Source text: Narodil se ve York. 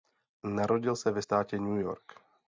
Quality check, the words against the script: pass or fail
fail